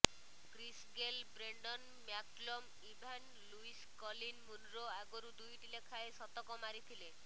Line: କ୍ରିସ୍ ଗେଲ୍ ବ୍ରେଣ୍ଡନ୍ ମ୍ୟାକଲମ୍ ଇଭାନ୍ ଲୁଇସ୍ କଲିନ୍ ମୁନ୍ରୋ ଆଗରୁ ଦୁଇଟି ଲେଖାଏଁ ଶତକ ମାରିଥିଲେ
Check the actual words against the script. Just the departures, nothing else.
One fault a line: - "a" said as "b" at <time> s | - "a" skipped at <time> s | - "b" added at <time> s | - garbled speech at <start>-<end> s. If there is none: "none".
none